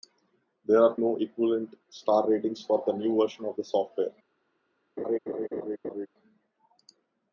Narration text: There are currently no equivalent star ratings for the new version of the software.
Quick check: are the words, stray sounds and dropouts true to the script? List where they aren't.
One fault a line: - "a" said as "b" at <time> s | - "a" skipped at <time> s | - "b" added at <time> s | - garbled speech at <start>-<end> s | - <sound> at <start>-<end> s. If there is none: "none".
- "currently" skipped at 0.9 s
- laugh at 5.0-6.1 s